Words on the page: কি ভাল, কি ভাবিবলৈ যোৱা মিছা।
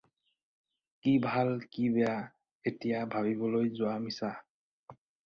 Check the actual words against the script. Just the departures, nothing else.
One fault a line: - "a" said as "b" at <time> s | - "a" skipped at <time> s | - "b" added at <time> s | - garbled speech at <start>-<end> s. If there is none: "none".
- "বেয়া এতিয়া" added at 1.9 s